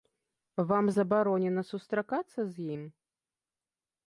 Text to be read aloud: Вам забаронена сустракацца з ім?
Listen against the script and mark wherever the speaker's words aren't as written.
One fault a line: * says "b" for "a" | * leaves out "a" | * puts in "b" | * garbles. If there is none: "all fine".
all fine